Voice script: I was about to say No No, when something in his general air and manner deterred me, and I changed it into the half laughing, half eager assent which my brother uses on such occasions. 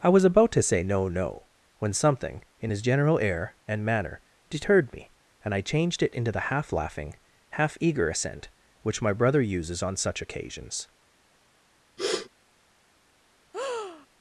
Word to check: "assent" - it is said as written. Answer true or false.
true